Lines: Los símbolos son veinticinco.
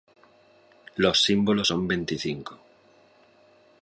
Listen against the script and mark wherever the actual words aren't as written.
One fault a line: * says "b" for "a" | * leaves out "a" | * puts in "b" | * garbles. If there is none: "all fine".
all fine